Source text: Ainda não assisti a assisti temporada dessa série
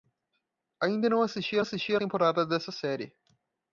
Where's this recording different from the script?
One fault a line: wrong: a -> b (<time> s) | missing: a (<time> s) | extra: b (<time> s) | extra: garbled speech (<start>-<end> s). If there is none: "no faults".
no faults